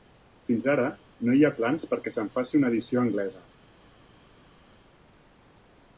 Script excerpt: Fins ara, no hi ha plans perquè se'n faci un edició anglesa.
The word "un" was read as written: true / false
false